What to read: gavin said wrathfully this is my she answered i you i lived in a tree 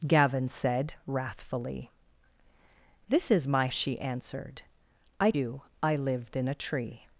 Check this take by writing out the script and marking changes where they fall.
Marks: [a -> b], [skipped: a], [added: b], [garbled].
gavin said wrathfully this is my she answered i you i lived in a tree